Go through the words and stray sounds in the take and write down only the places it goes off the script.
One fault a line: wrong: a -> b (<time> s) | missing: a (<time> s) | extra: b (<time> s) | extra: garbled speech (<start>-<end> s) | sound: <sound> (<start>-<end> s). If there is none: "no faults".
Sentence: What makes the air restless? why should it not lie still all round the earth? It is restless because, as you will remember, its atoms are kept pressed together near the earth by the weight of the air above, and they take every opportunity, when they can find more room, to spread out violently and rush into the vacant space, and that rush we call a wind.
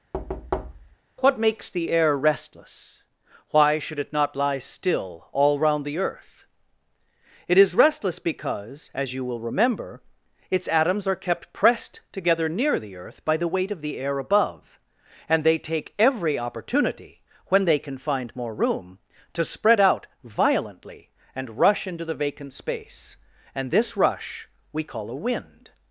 sound: thud (0.1-1.0 s)
wrong: that -> this (23.7 s)